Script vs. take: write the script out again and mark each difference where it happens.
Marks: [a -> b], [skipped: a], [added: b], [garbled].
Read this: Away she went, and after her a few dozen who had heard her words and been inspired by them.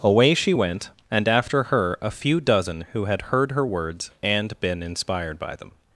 Away she went, and after her a few dozen who had heard her words and been inspired by them.